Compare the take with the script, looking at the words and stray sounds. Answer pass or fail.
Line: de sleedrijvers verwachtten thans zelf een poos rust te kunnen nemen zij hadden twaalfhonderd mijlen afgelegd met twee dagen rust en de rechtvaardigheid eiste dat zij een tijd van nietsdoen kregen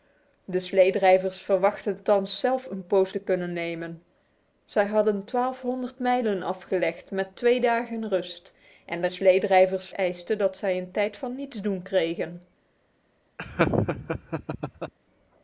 fail